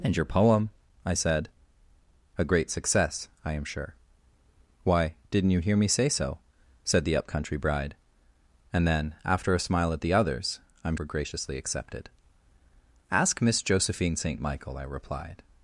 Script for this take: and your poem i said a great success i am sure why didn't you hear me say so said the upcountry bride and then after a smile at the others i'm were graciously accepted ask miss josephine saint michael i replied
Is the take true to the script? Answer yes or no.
yes